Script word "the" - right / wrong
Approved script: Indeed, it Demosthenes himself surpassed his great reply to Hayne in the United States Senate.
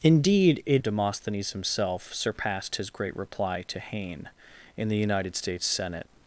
right